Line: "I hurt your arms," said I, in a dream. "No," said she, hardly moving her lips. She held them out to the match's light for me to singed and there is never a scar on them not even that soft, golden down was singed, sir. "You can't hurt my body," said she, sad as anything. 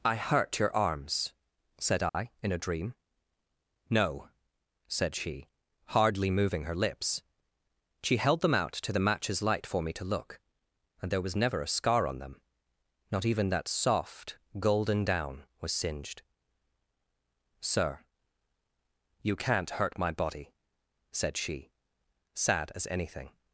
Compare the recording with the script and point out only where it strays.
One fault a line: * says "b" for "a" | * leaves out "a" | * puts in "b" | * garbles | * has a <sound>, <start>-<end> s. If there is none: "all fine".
* has a dropout, 2.1-2.1 s
* says "look" for "singed"
* says "was" for "is"